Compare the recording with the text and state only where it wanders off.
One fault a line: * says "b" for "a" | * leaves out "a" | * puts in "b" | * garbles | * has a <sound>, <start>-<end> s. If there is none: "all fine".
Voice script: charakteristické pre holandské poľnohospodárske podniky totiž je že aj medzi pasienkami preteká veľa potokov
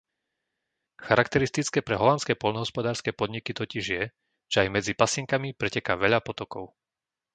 all fine